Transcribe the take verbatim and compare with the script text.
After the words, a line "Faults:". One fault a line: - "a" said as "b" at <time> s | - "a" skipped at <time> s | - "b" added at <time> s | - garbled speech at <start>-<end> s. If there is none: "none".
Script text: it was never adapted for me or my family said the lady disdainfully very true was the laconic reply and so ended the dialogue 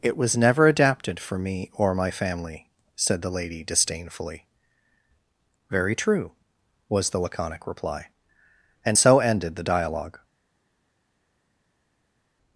it was never adapted for me or my family said the lady disdainfully very true was the laconic reply and so ended the dialogue
Faults:
none